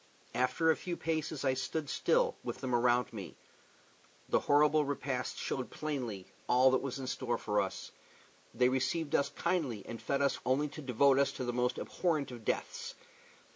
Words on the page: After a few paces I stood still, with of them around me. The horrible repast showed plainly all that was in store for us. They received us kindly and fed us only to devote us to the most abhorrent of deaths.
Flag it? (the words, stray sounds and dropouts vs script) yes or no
no